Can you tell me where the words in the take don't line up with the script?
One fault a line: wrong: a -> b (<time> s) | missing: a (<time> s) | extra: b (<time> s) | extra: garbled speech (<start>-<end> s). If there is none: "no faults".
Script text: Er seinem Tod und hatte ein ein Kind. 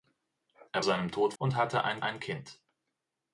no faults